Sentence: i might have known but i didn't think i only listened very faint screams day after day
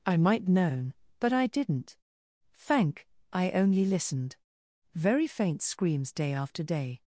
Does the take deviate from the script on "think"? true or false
true